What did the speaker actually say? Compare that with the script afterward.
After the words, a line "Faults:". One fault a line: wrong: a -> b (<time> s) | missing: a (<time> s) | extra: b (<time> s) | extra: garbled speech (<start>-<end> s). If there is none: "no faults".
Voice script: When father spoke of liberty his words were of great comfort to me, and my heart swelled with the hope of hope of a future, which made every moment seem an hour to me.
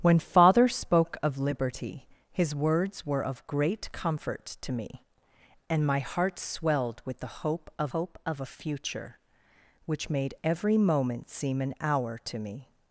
When father spoke of liberty his words were of great comfort to me, and my heart swelled with the hope of hope of a future, which made every moment seem an hour to me.
Faults:
no faults